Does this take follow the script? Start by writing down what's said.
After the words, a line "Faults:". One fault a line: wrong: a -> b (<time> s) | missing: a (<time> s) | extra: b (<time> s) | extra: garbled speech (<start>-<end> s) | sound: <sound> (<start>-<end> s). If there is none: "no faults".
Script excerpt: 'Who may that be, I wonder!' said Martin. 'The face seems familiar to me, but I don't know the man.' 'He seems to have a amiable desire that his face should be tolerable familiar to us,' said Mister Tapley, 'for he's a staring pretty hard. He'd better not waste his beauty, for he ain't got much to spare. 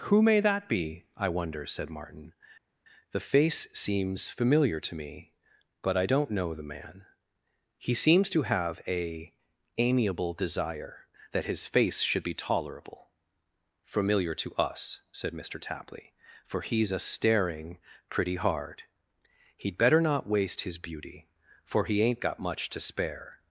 'Who may that be, I wonder!' said Martin. 'The face seems familiar to me, but I don't know the man.' 'He seems to have a amiable desire that his face should be tolerable familiar to us,' said Mister Tapley, 'for he's a staring pretty hard. He'd better not waste his beauty, for he ain't got much to spare.
Faults:
no faults